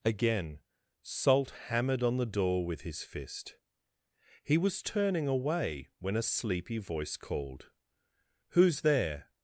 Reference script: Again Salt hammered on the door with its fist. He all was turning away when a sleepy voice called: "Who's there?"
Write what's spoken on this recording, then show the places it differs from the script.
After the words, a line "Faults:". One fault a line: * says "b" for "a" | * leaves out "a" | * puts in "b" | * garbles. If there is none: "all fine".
Again Salt hammered on the door with his fist. He was turning away when a sleepy voice called: "Who's there?"
Faults:
* says "his" for "its"
* leaves out "all"